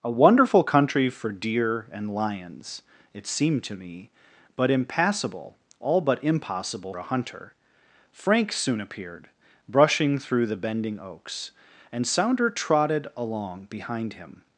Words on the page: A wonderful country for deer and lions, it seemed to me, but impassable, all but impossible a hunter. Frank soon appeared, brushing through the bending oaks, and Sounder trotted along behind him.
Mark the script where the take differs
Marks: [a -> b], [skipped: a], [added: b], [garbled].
A wonderful country for deer and lions, it seemed to me, but impassable, all but impossible a hunter. Frank soon appeared, brushing through the bending oaks, and Sounder trotted along behind him.